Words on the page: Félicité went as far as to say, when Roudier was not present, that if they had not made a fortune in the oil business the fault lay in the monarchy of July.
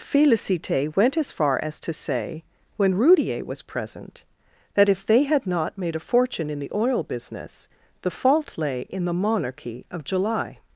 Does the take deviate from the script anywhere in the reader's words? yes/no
yes